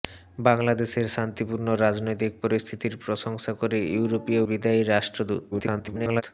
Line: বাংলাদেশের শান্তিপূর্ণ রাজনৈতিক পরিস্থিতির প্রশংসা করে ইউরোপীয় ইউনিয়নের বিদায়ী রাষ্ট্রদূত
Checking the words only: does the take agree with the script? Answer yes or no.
no